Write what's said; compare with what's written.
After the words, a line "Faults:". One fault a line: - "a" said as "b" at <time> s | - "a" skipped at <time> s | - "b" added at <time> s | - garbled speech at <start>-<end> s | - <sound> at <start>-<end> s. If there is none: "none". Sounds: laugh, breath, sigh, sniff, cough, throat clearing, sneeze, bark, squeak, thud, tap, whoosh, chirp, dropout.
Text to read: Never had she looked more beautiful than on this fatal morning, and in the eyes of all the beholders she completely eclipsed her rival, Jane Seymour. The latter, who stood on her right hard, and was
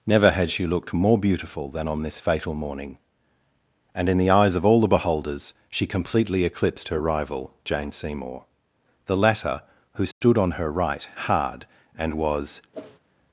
Never had she looked more beautiful than on this fatal morning, and in the eyes of all the beholders she completely eclipsed her rival, Jane Seymour. The latter, who stood on her right hard, and was
Faults:
- dropout at 10.1-10.2 s
- whoosh at 12.7-13.0 s